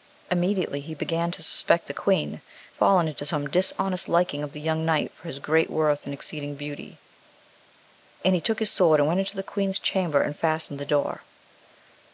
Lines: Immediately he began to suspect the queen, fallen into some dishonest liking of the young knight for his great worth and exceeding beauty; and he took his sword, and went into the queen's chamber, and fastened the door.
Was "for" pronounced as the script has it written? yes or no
yes